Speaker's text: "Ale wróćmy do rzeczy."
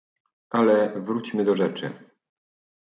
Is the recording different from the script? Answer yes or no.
no